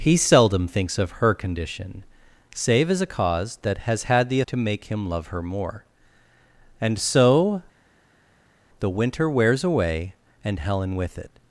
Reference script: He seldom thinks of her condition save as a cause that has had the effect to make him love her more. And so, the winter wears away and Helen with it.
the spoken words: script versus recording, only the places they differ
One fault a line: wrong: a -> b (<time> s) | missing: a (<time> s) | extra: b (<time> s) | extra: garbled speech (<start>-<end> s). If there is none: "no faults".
missing: effect (4.4 s)